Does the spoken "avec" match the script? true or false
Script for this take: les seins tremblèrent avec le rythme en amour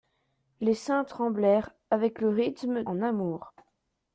true